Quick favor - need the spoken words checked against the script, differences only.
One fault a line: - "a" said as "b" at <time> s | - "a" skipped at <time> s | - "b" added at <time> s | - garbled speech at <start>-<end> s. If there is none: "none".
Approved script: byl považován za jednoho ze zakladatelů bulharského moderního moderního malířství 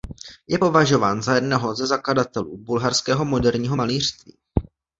- "byl" said as "je" at 0.5 s
- "moderního" skipped at 3.8 s